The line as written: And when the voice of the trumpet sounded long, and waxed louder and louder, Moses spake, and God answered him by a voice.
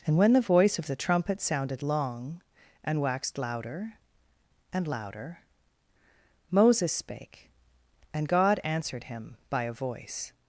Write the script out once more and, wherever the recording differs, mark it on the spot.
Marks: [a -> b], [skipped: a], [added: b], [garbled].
And when the voice of the trumpet sounded long, and waxed louder and louder, Moses spake, and God answered him by a voice.